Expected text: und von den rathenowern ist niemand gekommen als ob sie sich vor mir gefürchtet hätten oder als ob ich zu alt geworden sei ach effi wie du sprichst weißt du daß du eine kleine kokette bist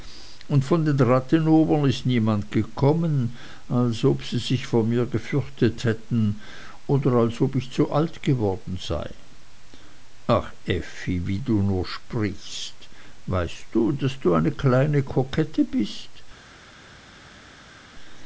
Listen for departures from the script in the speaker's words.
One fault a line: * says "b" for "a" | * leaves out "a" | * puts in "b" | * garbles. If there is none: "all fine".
* puts in "nur"